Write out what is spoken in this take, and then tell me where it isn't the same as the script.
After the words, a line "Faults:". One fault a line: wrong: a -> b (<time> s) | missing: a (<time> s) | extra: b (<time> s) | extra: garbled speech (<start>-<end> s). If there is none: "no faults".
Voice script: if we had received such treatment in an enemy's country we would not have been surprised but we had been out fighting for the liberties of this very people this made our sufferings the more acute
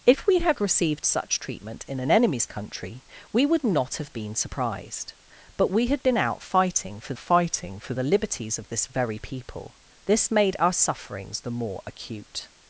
if we had received such treatment in an enemy's country we would not have been surprised but we had been out fighting for fighting for the liberties of this very people this made our sufferings the more acute
Faults:
extra: fighting for (7.2 s)